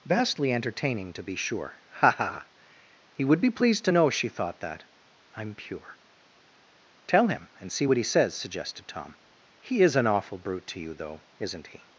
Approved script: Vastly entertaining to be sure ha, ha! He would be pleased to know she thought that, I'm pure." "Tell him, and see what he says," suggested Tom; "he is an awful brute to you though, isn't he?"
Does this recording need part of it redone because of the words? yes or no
no